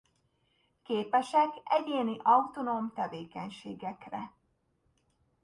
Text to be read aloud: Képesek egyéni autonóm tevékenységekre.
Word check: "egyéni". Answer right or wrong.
right